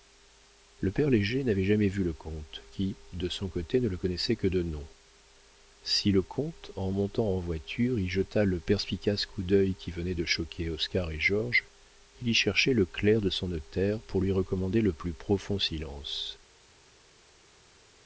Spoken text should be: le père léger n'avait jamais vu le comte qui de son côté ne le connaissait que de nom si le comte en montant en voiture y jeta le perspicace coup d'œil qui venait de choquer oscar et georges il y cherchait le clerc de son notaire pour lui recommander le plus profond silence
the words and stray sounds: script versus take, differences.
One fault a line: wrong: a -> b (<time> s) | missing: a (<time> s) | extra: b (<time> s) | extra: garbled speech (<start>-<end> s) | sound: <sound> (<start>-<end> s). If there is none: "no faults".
no faults